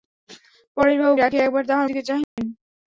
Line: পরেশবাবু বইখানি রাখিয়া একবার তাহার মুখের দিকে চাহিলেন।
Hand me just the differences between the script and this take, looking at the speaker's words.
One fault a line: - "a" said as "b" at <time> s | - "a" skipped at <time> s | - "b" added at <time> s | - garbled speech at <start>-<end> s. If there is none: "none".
- "বইখানি" skipped at 1.1 s
- "মুখের" skipped at 1.9 s